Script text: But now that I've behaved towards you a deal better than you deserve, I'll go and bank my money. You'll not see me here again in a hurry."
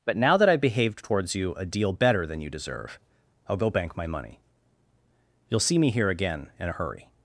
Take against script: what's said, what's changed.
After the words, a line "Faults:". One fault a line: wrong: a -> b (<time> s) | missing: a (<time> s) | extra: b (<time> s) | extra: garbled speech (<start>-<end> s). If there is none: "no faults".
But now that I've behaved towards you a deal better than you deserve, I'll go bank my money. You'll see me here again in a hurry."
Faults:
missing: and (3.7 s)
missing: not (5.6 s)